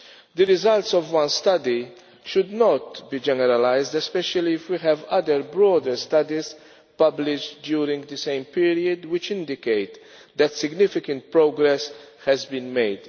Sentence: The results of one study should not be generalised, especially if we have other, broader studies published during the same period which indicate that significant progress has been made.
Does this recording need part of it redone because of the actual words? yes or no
no